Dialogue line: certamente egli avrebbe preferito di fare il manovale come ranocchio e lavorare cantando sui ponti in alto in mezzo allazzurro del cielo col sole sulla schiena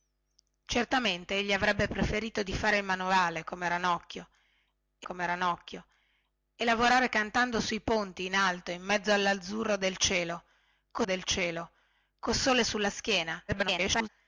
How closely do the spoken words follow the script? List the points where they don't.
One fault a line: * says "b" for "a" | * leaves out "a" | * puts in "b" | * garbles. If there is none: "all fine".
* puts in "come ranocchio e"
* puts in "del cielo col"
* garbles